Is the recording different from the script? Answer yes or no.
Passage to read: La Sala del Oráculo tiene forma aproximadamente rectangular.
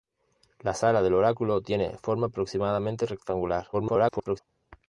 yes